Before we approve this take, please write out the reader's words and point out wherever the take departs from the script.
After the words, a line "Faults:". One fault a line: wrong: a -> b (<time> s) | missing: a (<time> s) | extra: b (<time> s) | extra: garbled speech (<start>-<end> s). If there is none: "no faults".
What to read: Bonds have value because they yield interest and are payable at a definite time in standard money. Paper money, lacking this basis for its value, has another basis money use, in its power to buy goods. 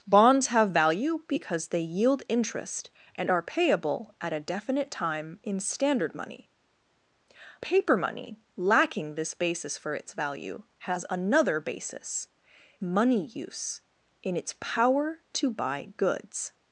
Bonds have value because they yield interest and are payable at a definite time in standard money. Paper money, lacking this basis for its value, has another basis money use, in its power to buy goods.
Faults:
no faults